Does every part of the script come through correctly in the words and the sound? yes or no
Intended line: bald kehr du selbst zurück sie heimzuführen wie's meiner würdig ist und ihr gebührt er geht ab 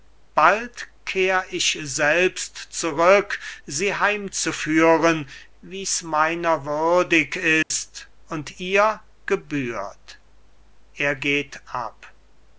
no